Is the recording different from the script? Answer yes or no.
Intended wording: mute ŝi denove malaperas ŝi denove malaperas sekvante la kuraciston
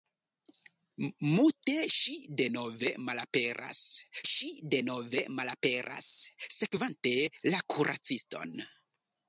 no